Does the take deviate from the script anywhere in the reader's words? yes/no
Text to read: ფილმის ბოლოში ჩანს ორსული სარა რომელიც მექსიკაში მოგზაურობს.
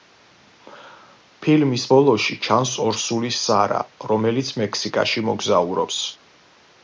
no